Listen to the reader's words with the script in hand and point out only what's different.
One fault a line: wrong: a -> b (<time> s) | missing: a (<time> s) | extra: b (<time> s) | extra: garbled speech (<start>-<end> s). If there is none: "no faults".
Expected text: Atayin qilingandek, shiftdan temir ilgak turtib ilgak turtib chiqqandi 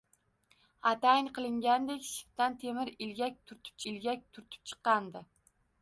no faults